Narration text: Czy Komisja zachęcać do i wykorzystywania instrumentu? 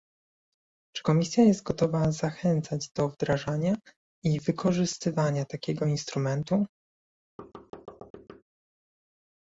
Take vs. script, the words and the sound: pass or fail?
fail